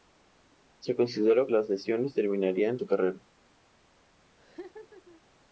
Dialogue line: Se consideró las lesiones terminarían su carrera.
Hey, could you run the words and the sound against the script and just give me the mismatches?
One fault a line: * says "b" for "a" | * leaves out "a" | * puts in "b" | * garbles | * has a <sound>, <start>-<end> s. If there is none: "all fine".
* has a laugh, 4.4-5.2 s